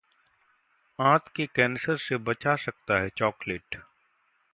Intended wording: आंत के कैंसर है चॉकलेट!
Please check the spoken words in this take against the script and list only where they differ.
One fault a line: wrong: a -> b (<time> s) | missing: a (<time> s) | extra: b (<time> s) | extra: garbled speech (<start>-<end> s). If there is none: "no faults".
extra: से बचा सकता (2.0 s)